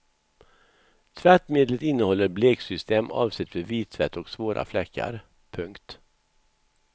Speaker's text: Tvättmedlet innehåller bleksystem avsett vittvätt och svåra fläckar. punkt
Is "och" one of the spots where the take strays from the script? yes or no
no